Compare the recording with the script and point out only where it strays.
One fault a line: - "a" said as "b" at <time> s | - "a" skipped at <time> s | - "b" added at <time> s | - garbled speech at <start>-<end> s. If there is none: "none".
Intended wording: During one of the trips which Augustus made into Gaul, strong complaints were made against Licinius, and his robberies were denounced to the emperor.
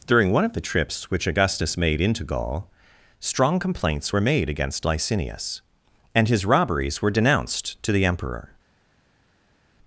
none